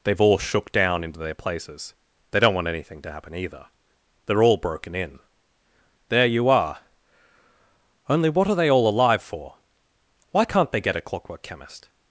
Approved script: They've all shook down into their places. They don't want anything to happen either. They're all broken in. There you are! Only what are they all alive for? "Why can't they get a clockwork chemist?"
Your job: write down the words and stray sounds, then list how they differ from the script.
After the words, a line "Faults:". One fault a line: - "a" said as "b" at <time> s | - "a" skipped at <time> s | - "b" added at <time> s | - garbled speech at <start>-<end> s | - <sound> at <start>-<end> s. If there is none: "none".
They've all shook down into their places. They don't want anything to happen either. They're all broken in. There you are! Only what are they all alive for? "Why can't they get a clockwork chemist?"
Faults:
none